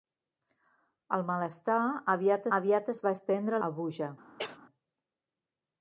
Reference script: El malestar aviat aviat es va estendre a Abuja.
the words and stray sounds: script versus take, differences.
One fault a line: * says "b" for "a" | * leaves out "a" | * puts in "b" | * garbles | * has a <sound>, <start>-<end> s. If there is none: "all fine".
* has a cough, 4.4-4.6 s